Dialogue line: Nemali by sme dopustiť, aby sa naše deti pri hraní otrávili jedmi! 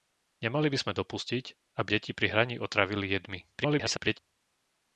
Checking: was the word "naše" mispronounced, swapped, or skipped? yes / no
yes